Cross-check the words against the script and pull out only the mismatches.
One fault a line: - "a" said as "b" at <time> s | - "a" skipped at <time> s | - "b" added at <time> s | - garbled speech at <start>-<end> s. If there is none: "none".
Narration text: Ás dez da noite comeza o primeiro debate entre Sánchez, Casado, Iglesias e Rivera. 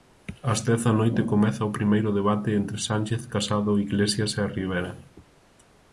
none